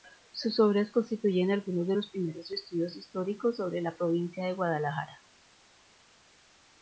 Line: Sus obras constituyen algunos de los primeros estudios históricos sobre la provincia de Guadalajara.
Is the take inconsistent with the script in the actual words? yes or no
no